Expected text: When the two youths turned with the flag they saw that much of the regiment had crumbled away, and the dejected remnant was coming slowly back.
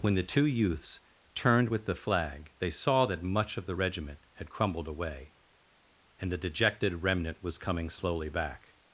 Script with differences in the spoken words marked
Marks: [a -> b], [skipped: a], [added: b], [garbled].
When the two youths turned with the flag they saw that much of the regiment had crumbled away, and the dejected remnant was coming slowly back.